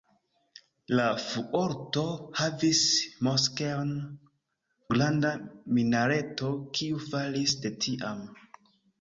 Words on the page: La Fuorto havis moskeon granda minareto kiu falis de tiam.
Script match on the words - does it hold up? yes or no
yes